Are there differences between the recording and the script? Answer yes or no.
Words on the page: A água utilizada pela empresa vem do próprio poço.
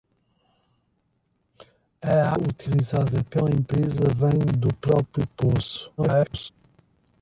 yes